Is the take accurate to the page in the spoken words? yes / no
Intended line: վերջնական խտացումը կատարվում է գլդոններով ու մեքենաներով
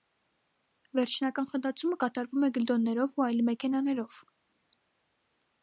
no